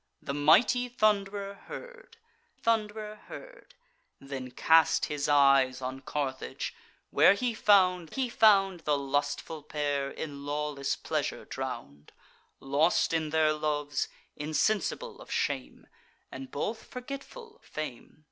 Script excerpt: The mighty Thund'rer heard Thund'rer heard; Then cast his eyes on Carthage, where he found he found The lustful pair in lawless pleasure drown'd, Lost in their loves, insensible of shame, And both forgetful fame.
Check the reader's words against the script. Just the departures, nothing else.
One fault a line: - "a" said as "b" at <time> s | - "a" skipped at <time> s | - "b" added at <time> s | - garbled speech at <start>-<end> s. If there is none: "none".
none